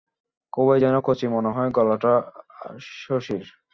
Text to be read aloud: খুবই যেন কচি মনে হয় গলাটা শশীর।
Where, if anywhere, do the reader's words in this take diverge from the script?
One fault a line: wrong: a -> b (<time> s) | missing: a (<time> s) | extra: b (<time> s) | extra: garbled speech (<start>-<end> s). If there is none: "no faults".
no faults